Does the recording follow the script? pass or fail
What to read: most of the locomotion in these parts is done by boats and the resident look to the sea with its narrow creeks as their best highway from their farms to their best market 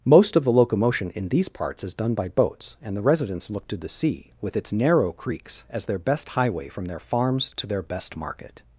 fail